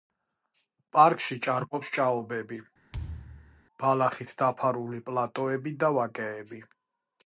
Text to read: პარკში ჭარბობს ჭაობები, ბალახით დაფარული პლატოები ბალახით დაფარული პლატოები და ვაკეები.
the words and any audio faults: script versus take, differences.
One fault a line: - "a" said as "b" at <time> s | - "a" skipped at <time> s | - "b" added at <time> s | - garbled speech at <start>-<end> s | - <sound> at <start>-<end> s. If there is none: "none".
- thud at 2.9-3.6 s
- "ბალახით დაფარული პლატოები" skipped at 5.8 s